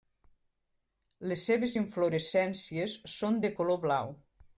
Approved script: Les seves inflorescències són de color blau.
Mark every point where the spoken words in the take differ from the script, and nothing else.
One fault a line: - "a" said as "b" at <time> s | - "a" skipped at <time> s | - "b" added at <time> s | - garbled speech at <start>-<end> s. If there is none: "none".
none